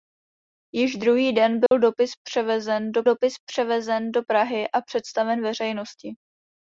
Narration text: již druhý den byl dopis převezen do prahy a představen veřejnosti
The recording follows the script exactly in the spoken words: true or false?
false